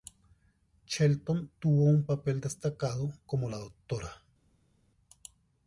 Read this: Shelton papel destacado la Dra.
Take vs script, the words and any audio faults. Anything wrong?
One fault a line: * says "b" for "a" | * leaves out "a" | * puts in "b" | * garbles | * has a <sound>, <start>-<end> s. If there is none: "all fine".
* puts in "tuvo un"
* puts in "como"